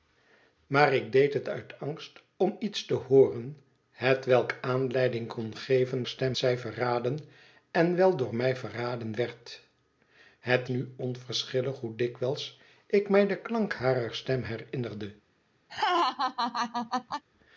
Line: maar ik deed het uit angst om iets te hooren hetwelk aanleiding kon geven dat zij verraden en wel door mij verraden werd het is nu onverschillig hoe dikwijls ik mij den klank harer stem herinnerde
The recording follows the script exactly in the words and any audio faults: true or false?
false